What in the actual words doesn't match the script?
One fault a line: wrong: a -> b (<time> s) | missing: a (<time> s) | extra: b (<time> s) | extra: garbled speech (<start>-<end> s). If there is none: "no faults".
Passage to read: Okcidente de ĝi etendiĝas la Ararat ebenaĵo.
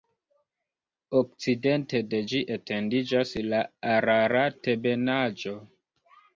no faults